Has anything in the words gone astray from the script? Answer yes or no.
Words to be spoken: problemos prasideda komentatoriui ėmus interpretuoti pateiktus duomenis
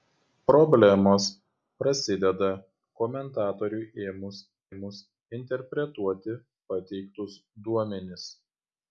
yes